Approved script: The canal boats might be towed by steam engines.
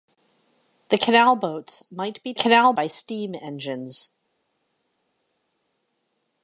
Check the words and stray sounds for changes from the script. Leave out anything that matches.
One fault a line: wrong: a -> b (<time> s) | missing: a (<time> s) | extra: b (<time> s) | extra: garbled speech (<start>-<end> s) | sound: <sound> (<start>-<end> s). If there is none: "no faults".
wrong: towed -> canal (2.3 s)